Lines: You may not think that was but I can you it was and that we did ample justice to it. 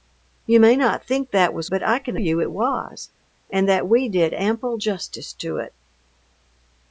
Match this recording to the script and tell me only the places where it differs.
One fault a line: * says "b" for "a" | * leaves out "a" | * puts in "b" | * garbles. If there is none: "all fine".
all fine